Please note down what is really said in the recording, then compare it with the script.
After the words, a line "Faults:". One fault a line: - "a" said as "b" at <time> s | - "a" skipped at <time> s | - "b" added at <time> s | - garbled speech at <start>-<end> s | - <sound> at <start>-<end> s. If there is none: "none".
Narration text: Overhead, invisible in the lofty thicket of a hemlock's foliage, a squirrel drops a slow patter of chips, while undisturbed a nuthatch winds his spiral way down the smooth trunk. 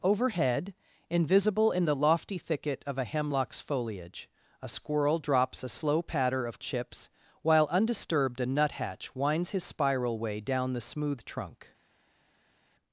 Overhead, invisible in the lofty thicket of a hemlock's foliage, a squirrel drops a slow patter of chips, while undisturbed a nuthatch winds his spiral way down the smooth trunk.
Faults:
none